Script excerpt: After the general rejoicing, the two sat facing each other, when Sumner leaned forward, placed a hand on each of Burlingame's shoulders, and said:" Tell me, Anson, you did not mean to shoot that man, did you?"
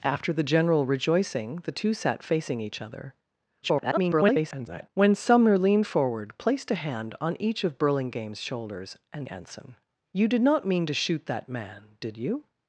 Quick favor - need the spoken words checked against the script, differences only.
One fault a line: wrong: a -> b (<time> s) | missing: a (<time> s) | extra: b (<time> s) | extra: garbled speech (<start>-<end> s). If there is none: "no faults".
extra: garbled speech (3.6-4.9 s)
missing: said Tell me (9.3 s)